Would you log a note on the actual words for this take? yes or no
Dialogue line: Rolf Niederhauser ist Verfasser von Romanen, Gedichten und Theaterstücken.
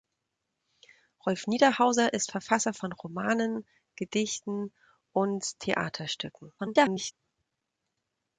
yes